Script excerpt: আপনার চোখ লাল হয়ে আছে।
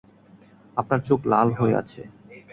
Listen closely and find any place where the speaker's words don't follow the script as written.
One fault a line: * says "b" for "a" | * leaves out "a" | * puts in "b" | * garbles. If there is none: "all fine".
all fine